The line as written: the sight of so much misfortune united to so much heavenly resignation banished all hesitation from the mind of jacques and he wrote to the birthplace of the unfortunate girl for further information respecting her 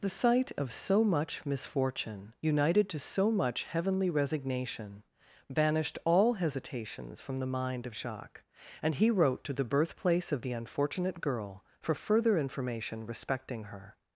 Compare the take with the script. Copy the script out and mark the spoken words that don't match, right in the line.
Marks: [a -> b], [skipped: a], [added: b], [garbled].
the sight of so much misfortune united to so much heavenly resignation banished all [hesitation -> hesitations] from the mind of jacques and he wrote to the birthplace of the unfortunate girl for further information respecting her